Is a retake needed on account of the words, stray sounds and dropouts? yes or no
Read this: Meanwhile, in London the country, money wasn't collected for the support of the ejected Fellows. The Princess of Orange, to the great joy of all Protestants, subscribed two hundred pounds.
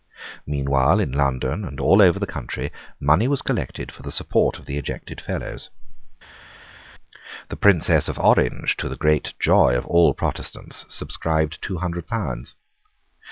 yes